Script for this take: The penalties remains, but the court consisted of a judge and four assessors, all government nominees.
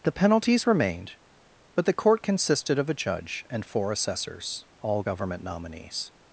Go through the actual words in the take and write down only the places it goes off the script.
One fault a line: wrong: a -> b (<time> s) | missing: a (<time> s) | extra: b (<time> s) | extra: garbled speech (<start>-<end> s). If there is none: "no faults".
wrong: remains -> remained (0.7 s)